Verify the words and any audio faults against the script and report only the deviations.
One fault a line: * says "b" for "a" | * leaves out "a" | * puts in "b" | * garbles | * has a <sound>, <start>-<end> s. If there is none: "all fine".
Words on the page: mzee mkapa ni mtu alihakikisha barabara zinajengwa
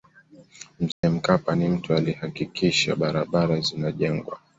* has a dropout, 0.9-1.0 s